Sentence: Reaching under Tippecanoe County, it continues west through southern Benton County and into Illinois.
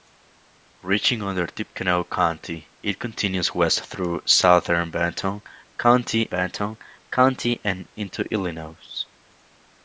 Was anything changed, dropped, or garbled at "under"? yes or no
no